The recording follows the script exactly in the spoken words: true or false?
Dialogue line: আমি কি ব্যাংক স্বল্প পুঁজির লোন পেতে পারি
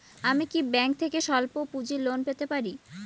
false